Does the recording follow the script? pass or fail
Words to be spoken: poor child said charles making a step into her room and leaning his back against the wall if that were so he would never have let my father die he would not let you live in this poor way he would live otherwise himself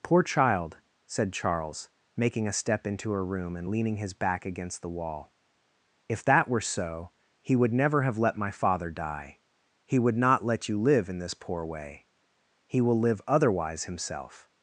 fail